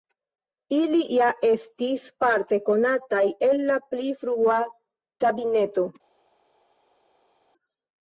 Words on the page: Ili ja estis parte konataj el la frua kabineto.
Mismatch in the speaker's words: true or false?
true